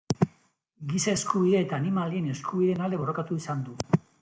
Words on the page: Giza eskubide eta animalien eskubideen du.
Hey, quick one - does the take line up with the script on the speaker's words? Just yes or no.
no